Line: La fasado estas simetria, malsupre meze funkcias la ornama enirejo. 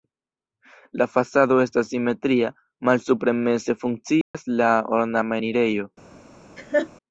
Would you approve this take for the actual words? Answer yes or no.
yes